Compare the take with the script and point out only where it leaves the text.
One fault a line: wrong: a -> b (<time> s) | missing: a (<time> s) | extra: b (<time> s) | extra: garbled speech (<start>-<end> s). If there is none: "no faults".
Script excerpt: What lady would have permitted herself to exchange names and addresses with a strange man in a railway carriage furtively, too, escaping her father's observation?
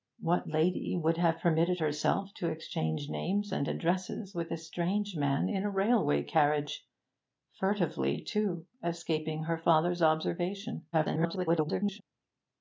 extra: garbled speech (10.9-12.0 s)